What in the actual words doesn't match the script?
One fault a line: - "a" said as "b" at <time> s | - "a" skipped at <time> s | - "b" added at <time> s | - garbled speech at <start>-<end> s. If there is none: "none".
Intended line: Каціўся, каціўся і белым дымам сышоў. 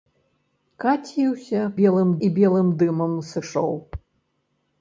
- "каціўся" said as "белым" at 1.8 s